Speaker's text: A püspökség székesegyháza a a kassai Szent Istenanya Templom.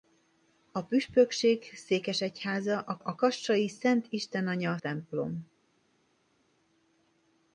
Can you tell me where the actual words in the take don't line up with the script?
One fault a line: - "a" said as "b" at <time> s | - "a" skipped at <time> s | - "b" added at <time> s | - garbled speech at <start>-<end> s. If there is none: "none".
none